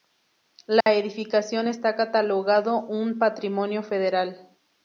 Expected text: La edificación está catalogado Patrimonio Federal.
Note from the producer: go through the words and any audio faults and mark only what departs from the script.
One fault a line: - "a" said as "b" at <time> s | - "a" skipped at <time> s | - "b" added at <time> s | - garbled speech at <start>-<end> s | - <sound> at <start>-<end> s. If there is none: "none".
- dropout at 0.8-0.9 s
- "un" added at 2.8 s